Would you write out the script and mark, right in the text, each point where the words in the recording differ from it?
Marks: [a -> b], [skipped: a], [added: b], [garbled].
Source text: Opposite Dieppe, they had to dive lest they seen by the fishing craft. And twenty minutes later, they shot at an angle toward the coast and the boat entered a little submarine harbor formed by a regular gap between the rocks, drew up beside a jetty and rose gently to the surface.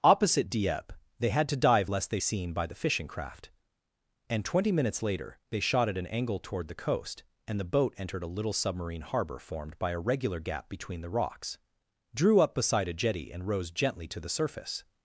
Opposite Dieppe, they had to dive lest they seen by the fishing craft. And twenty minutes later, they shot at an angle toward the coast and the boat entered a little submarine harbor formed by a regular gap between the rocks, drew up beside a jetty and rose gently to the surface.